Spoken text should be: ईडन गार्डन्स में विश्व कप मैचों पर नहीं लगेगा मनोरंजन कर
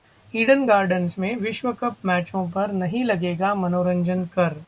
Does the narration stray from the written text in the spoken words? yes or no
no